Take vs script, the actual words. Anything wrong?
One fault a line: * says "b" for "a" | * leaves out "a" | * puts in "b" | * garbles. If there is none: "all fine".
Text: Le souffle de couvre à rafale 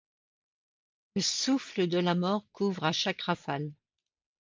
* puts in "la mort"
* puts in "chaque"